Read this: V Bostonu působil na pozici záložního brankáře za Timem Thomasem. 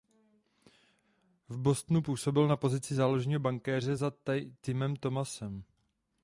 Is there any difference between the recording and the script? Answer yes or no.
no